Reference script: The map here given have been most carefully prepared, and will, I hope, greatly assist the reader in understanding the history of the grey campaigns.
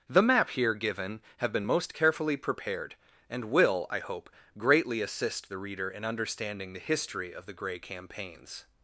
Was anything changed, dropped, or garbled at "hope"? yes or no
no